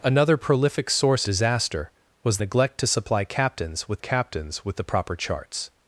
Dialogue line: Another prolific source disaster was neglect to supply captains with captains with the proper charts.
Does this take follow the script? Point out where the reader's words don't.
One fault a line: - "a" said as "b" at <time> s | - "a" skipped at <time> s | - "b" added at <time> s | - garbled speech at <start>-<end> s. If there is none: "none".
none